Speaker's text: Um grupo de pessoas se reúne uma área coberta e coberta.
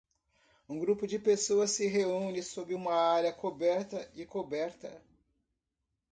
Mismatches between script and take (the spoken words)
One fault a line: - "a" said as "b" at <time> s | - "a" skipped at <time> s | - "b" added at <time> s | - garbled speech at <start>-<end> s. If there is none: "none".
- "sob" added at 2.4 s